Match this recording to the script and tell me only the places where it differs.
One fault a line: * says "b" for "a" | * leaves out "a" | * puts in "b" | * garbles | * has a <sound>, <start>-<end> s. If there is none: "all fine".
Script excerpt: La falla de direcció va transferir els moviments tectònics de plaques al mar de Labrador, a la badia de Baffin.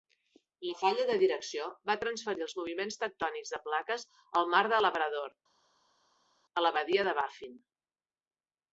all fine